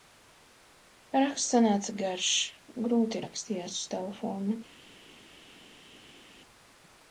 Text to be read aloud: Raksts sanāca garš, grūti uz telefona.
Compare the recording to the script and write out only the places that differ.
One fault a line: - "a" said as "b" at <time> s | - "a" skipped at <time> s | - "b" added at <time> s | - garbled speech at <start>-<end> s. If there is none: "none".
- "rakstījās" added at 3.2 s